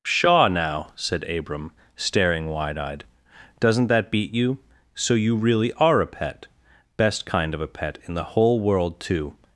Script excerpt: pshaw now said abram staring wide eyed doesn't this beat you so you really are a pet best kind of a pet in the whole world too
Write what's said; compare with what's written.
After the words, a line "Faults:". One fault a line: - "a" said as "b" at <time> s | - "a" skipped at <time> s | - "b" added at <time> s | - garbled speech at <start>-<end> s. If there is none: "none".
pshaw now said abram staring wide eyed doesn't that beat you so you really are a pet best kind of a pet in the whole world too
Faults:
- "this" said as "that" at 3.9 s